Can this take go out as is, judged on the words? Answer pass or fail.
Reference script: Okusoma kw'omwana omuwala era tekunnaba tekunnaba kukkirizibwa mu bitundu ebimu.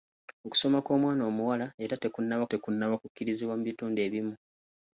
pass